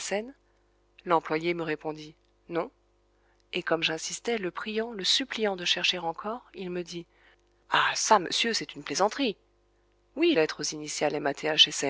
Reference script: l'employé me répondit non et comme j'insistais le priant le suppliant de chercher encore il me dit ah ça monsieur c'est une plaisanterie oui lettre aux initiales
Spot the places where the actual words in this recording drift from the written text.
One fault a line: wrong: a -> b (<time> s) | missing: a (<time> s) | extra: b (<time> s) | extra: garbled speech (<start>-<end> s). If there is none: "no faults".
no faults